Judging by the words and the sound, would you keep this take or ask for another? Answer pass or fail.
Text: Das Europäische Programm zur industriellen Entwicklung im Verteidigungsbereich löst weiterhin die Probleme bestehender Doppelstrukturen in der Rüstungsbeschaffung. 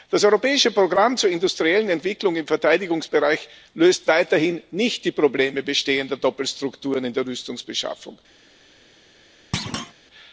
fail